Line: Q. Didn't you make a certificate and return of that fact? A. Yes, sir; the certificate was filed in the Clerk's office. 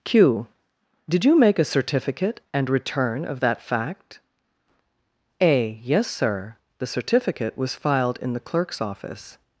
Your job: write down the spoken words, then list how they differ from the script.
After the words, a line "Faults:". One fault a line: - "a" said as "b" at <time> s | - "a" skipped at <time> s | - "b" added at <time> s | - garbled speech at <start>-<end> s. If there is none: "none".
Q. Did you make a certificate and return of that fact? A. Yes, sir; the certificate was filed in the Clerk's office.
Faults:
- "Didn't" said as "Did" at 1.1 s